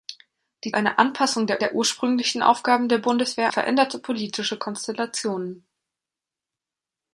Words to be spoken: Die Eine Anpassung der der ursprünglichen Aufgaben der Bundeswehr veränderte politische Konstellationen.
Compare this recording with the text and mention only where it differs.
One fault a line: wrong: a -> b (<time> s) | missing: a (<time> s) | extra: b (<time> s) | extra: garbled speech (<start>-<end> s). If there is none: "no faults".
no faults